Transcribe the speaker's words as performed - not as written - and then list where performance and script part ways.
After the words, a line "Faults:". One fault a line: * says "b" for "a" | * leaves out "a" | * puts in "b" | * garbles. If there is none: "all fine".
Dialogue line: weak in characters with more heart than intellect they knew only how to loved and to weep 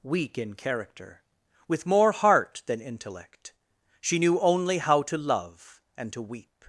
weak in character with more heart than intellect she knew only how to love and to weep
Faults:
* says "character" for "characters"
* says "she" for "they"
* says "love" for "loved"